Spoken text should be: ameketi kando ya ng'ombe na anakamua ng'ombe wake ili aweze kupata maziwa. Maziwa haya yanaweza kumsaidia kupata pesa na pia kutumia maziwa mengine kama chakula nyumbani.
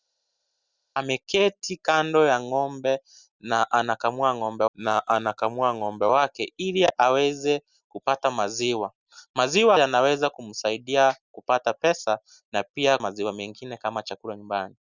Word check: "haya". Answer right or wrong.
wrong